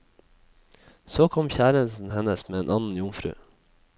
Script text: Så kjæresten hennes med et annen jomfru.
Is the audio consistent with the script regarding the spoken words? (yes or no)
no